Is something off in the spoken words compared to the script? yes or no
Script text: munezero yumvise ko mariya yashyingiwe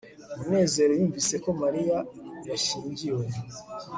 no